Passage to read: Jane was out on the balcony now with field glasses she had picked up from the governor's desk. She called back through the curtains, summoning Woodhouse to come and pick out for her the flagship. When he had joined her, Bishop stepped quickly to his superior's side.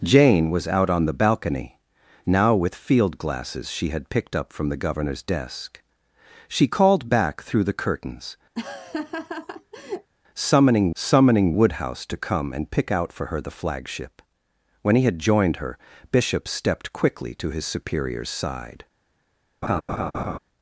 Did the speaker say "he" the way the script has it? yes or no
yes